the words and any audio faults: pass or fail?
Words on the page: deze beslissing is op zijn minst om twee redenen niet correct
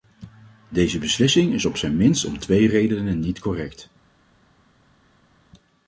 pass